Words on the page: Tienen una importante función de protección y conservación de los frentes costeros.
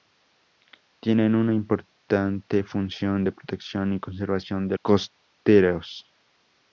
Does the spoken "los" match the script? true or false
false